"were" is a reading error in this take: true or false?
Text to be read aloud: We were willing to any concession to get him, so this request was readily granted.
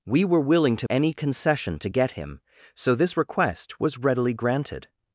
false